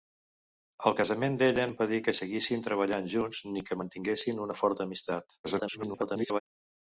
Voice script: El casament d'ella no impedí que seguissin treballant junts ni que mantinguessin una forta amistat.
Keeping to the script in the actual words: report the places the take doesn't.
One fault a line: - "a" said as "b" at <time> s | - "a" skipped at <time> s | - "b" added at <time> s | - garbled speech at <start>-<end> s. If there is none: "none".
- "no" skipped at 1.6 s
- garbled speech at 5.4-6.4 s